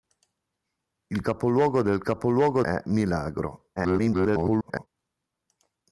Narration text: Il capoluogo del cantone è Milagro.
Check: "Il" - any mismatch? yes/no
no